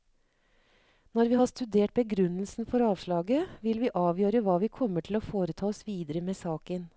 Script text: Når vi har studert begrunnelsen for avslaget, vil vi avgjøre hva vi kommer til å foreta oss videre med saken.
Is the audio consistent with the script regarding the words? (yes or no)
yes